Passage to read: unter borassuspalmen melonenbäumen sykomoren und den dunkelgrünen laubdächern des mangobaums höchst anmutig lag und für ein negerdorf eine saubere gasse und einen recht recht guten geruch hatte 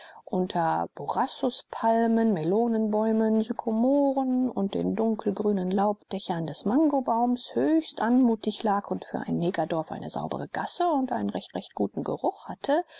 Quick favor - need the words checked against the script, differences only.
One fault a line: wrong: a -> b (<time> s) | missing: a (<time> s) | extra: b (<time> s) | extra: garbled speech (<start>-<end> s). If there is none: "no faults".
no faults